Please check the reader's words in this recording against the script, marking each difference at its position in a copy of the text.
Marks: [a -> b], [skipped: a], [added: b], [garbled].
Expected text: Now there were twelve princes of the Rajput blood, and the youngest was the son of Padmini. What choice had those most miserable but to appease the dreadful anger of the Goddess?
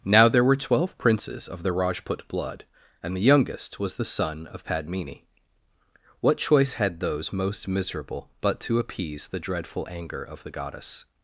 Now there were twelve princes of the Rajput blood, and the youngest was the son of Padmini. What choice had those most miserable but to appease the dreadful anger of the Goddess?